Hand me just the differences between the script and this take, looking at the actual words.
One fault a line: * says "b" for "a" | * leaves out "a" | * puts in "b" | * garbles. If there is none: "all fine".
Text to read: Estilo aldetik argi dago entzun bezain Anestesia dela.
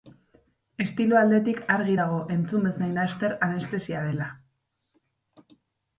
* puts in "laster"